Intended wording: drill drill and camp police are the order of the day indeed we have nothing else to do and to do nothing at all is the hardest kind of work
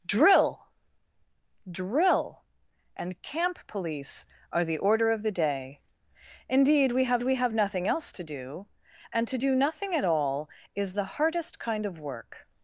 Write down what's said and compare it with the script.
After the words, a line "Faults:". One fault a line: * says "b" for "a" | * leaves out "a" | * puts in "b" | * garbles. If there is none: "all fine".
drill drill and camp police are the order of the day indeed we have we have nothing else to do and to do nothing at all is the hardest kind of work
Faults:
* puts in "we have"